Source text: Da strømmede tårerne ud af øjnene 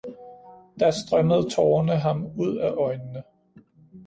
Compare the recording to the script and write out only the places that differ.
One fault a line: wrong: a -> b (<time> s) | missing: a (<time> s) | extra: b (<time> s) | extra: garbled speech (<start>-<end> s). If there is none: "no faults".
extra: ham (1.9 s)